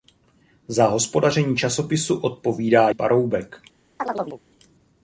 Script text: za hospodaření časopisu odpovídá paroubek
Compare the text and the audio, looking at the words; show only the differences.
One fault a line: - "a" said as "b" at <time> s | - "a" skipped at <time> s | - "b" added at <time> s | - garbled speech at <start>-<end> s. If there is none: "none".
none